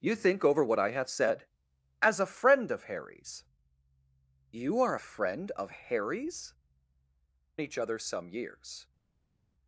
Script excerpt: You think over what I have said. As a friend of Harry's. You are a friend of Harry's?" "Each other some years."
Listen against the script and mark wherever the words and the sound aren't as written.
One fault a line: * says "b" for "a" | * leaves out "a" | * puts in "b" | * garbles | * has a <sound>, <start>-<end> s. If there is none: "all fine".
all fine